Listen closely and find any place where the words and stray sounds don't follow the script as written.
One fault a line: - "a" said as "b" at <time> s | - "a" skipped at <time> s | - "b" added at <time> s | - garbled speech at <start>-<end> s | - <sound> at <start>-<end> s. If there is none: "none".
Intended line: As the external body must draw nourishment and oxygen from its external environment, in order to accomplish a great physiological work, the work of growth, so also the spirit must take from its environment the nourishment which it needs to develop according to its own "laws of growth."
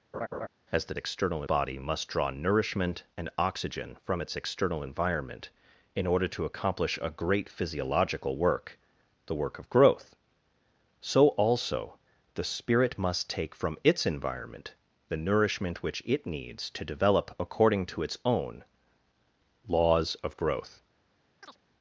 - laugh at 0.1-0.5 s
- chirp at 21.4-21.6 s